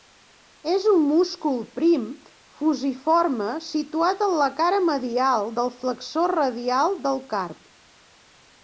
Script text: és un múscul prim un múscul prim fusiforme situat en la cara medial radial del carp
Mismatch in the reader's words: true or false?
true